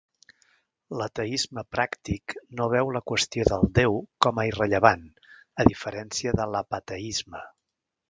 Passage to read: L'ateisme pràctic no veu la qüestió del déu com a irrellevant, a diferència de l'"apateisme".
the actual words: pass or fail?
pass